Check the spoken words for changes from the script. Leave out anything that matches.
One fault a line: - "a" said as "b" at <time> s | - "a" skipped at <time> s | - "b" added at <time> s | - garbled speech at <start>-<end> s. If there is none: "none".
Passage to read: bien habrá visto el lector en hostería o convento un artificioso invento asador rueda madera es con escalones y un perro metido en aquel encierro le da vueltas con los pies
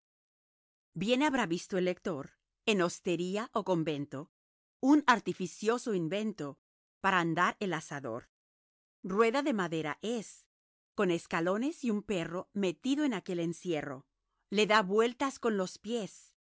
- "para andar el" added at 7.0 s
- "de" added at 9.4 s